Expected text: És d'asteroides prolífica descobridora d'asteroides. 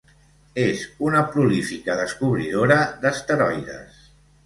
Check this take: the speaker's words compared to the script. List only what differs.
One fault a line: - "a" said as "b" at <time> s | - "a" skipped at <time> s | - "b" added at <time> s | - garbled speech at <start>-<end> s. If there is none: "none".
- "d'asteroides" said as "una" at 1.1 s